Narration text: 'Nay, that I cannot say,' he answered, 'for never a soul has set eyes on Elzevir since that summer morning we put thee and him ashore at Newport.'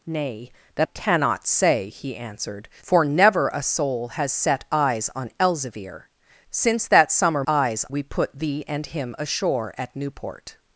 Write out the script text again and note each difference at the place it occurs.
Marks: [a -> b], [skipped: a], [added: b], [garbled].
'Nay, that [skipped: I] cannot say,' he answered, 'for never a soul has set eyes on Elzevir since that summer [morning -> eyes] we put thee and him ashore at Newport.'